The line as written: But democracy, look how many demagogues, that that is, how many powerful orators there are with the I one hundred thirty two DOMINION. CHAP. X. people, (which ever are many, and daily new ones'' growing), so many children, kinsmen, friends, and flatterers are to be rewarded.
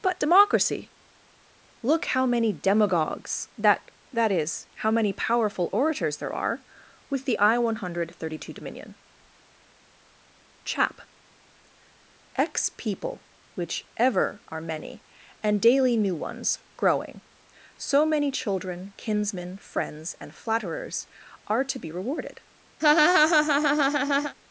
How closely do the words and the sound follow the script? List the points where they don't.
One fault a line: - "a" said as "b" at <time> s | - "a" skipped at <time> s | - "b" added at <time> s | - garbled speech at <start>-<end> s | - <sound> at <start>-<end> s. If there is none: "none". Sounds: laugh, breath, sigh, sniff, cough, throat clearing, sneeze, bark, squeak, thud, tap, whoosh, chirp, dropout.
- laugh at 22.8-24.3 s